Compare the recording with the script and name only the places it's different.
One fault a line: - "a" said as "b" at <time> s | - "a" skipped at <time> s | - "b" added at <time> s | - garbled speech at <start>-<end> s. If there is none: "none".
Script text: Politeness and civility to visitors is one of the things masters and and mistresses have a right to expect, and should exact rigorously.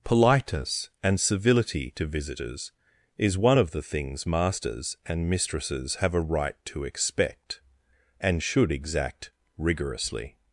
- "and" skipped at 5.3 s